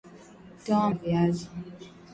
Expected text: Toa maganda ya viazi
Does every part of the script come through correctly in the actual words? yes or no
no